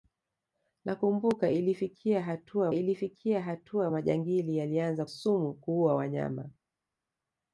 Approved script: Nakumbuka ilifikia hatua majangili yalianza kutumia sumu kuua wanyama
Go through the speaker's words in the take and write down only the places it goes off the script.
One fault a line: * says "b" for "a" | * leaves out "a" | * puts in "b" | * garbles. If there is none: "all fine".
* puts in "ilifikia hatua"
* leaves out "kutumia"